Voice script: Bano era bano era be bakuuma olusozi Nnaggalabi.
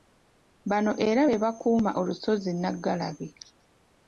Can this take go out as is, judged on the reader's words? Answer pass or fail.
fail